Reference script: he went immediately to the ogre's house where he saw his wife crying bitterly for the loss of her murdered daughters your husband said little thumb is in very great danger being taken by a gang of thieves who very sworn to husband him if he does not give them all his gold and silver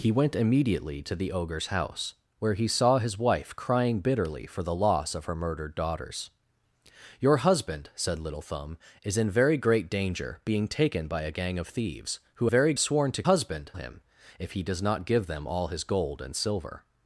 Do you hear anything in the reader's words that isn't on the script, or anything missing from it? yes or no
no